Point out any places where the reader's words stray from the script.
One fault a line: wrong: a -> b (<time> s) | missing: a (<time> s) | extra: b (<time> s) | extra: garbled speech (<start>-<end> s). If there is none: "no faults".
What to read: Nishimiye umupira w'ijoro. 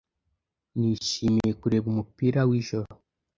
extra: kureba (1.6 s)